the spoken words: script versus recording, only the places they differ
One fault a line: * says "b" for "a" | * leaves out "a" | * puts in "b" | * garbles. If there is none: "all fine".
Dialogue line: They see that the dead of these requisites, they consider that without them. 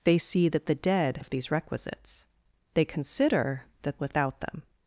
all fine